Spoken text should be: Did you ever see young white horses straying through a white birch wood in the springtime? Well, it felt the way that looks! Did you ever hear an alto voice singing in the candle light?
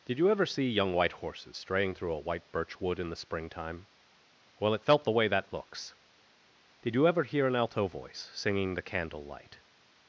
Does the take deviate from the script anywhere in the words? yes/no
yes